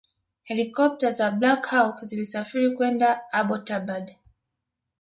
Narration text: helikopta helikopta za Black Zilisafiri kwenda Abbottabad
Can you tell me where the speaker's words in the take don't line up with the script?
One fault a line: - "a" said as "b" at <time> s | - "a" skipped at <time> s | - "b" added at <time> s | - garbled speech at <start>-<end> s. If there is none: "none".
- "helikopta" skipped at 1.1 s
- "Hawk" added at 1.6 s